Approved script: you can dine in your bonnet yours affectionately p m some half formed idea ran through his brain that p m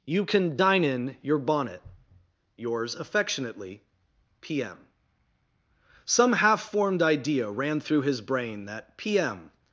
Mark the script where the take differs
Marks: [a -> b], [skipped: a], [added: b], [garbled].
you can dine in your bonnet yours affectionately p m some half formed idea ran through his brain that p m